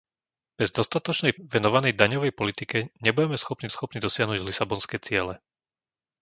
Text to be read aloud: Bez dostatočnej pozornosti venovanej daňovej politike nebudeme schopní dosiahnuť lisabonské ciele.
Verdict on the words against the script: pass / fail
fail